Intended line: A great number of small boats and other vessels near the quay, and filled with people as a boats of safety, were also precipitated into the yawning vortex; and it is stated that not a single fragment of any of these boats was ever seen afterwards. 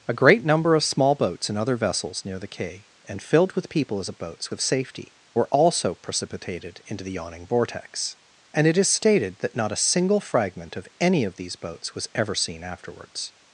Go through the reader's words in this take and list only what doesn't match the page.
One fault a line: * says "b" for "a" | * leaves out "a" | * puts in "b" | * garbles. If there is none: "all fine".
all fine